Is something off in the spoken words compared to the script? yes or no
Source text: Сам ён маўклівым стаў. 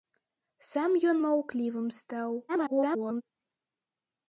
yes